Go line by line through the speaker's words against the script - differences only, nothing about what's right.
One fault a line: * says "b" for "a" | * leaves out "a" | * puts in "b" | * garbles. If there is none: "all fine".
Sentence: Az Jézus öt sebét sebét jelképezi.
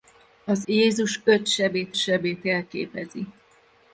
all fine